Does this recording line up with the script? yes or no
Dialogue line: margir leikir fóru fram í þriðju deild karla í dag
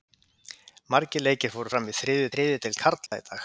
no